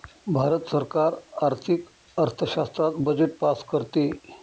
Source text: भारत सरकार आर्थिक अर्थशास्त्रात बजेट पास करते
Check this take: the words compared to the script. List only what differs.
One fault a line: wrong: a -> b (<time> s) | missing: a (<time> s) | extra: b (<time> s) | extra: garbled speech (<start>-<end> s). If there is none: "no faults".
no faults